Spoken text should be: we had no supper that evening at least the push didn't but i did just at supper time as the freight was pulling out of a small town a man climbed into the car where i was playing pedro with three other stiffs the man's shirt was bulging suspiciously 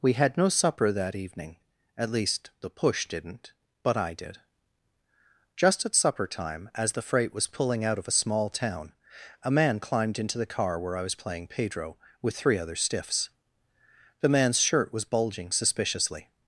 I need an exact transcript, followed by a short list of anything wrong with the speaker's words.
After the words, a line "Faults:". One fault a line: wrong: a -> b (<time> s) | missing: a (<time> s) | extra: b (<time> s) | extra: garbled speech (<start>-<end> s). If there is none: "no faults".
we had no supper that evening at least the push didn't but i did just at supper time as the freight was pulling out of a small town a man climbed into the car where i was playing pedro with three other stiffs the man's shirt was bulging suspiciously
Faults:
no faults